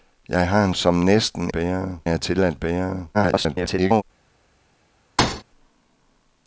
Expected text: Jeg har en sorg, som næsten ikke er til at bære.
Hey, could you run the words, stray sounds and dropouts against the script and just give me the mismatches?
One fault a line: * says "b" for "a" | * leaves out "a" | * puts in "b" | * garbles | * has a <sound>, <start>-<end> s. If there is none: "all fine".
* leaves out "sorg"
* says "bære" for "ikke"
* garbles
* has a thud, 5.2-5.4 s